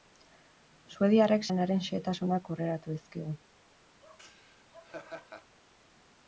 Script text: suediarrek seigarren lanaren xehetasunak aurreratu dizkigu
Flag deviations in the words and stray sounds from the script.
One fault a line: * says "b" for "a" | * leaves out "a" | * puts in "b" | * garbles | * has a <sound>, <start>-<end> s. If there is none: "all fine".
* leaves out "seigarren"
* has a laugh, 4.0-5.6 s